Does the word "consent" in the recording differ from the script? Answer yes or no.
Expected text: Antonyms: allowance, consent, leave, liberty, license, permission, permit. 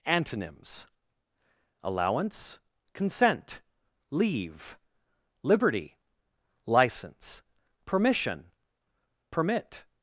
no